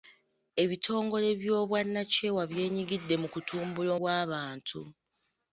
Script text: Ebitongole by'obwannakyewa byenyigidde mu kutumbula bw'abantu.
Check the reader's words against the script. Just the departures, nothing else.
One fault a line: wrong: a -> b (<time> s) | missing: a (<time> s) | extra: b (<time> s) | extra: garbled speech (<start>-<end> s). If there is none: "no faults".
no faults